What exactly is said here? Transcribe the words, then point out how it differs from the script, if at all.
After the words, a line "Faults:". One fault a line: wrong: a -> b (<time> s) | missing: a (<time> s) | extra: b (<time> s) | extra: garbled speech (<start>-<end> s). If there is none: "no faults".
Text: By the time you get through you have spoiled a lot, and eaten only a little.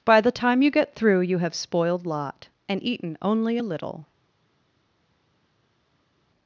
By the time you get through you have spoiled lot, and eaten only a little.
Faults:
missing: a (2.0 s)